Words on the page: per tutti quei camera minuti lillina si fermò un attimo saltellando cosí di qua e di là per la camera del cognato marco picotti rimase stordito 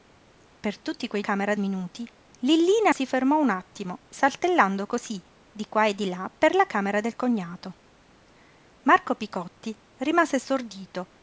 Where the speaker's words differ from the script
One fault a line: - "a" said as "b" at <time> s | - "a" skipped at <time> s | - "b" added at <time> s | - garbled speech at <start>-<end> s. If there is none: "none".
none